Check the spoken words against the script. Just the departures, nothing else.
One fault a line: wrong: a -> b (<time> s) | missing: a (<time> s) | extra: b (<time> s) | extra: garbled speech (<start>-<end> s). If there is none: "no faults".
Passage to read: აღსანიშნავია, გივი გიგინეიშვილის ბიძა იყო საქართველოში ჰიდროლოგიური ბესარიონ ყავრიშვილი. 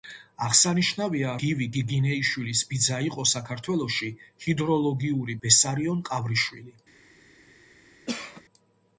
no faults